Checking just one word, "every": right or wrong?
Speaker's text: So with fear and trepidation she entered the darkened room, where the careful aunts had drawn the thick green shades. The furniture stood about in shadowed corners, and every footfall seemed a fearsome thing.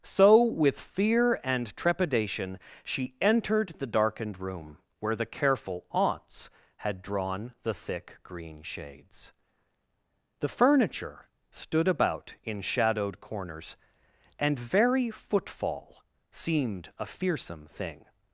wrong